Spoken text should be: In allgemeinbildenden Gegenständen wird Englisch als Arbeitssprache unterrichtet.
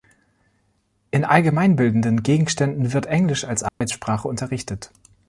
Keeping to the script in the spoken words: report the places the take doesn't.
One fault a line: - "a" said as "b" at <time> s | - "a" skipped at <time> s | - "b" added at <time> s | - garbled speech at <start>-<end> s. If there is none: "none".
none